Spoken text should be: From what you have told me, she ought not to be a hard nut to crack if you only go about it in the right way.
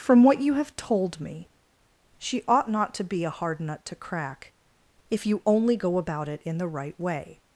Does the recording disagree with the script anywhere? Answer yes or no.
no